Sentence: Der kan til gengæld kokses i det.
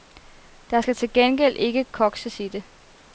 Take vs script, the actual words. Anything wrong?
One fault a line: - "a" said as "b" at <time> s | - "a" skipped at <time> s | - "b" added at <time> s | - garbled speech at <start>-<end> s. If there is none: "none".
- "kan" said as "skal" at 0.8 s
- "ikke" added at 1.6 s